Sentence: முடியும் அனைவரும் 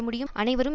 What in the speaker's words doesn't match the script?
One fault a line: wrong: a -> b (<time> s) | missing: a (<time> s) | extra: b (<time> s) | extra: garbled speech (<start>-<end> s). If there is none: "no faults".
no faults